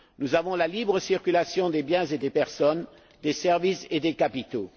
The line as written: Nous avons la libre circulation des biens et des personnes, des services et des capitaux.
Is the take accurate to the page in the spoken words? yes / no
yes